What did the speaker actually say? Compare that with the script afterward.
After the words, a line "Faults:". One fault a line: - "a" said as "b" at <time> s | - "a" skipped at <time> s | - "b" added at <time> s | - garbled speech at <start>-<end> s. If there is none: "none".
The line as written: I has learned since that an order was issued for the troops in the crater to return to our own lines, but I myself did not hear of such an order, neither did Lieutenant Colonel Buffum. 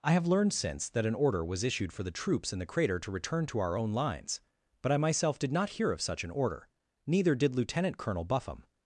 I have learned since that an order was issued for the troops in the crater to return to our own lines, but I myself did not hear of such an order, neither did Lieutenant Colonel Buffum.
Faults:
- "has" said as "have" at 0.1 s